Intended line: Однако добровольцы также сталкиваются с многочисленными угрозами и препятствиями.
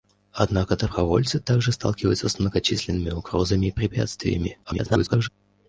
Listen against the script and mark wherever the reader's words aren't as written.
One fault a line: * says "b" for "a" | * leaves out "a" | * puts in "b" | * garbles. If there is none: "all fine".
* garbles